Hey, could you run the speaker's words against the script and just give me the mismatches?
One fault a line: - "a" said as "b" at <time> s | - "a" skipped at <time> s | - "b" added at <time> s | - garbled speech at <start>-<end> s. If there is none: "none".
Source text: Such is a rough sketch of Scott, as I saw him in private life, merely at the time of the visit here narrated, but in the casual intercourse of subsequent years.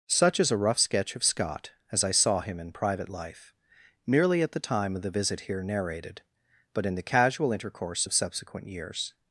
none